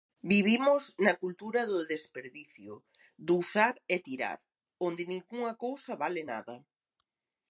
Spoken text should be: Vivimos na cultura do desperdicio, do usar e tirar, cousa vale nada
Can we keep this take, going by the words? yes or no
no